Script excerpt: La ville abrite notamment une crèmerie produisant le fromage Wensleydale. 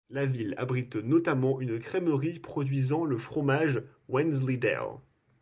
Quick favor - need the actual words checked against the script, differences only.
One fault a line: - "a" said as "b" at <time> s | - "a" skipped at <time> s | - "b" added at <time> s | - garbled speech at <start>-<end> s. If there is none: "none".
none